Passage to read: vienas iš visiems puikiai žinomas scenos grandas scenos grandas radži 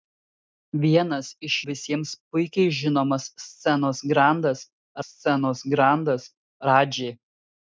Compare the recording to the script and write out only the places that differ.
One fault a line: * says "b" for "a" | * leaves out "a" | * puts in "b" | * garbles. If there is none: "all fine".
all fine